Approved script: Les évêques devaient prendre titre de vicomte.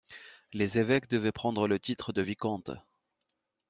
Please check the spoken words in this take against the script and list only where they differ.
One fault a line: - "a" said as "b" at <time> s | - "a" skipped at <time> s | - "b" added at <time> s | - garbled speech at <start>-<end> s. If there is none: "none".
- "le" added at 1.7 s